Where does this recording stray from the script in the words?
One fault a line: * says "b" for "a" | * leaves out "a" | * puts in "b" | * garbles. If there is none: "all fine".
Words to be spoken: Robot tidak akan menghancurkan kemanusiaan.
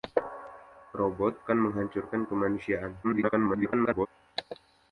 * leaves out "tidak"
* garbles